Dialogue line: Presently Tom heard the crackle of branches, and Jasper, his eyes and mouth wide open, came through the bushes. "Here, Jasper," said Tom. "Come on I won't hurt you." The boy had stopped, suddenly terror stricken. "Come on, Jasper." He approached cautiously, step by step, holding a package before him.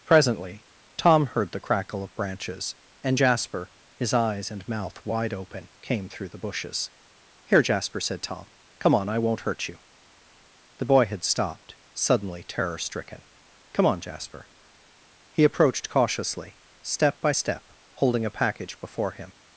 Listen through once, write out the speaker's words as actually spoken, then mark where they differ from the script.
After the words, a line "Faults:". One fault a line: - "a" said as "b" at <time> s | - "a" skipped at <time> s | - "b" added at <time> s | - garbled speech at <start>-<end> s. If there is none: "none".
Presently Tom heard the crackle of branches, and Jasper, his eyes and mouth wide open, came through the bushes. "Here, Jasper," said Tom. "Come on I won't hurt you." The boy had stopped, suddenly terror stricken. "Come on, Jasper." He approached cautiously, step by step, holding a package before him.
Faults:
none